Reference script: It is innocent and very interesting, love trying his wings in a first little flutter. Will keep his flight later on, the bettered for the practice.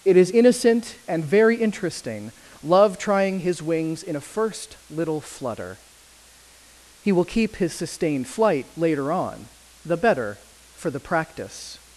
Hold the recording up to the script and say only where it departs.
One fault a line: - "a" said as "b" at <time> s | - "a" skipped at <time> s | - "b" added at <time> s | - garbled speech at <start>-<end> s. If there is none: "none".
- "He" added at 7.0 s
- "sustained" added at 7.7 s
- "bettered" said as "better" at 10.0 s